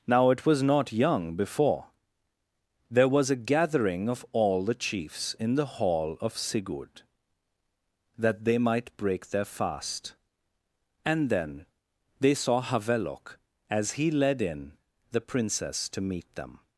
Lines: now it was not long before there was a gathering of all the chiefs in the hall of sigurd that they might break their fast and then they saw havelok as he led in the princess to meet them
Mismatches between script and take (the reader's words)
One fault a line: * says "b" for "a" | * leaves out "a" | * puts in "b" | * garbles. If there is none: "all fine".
* says "young" for "long"